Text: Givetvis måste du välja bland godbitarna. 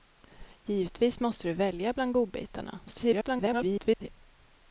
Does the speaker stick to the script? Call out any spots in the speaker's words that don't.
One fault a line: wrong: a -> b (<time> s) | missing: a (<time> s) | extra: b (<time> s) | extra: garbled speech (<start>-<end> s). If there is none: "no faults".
extra: garbled speech (2.9-4.1 s)